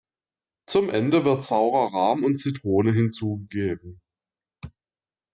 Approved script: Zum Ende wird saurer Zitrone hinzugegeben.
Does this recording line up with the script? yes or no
no